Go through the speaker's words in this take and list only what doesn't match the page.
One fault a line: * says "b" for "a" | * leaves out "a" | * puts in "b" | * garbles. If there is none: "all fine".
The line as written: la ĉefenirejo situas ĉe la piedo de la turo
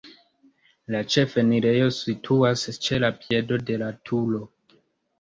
all fine